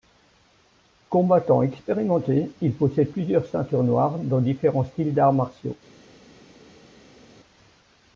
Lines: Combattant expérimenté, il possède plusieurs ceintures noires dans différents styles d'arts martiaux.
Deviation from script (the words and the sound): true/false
false